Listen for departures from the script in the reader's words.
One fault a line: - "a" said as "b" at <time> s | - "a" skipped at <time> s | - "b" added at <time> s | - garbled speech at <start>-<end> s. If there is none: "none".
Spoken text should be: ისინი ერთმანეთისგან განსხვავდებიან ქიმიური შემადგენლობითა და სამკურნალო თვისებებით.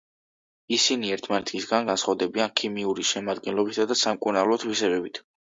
none